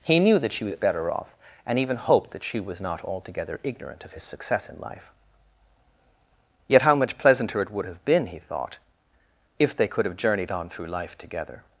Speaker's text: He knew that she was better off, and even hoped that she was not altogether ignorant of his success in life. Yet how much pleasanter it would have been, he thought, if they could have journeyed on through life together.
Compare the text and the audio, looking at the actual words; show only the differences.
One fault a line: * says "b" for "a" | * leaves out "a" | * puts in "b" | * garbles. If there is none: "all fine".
all fine